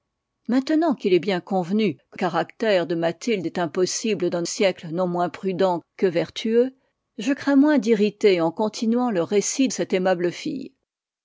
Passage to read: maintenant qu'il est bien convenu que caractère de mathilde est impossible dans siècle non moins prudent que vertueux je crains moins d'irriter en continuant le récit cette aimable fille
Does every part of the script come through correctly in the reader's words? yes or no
yes